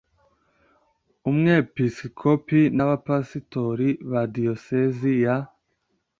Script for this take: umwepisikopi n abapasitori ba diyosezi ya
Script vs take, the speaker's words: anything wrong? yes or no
no